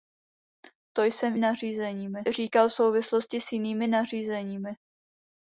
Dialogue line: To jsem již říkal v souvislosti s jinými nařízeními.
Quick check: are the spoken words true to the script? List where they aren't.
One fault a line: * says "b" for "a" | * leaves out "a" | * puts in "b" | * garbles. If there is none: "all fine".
* says "nařízeními" for "již"